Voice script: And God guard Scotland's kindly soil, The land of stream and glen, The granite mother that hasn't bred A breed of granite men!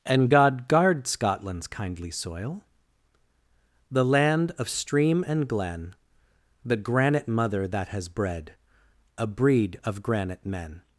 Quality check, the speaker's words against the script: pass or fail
fail